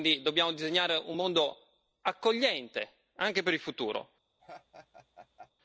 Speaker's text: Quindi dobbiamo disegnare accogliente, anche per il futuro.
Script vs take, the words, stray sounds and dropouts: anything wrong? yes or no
yes